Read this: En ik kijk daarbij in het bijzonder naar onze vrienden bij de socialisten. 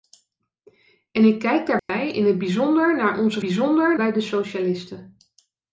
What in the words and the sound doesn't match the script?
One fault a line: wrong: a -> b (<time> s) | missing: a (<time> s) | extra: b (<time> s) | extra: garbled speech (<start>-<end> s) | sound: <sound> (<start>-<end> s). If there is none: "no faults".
sound: dropout (1.8-1.9 s)
wrong: vrienden -> bijzonder (3.4 s)